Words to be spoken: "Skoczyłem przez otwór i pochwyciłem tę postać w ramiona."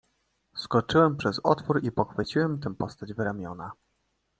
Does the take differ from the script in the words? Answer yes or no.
no